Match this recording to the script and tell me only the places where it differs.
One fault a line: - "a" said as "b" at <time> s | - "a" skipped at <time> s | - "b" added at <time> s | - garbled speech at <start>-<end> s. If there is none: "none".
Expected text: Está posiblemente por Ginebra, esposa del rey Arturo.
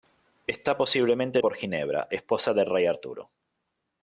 none